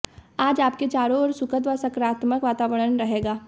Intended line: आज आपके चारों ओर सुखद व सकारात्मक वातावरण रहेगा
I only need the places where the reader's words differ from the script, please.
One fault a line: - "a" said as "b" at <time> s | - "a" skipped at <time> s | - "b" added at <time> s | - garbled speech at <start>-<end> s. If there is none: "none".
none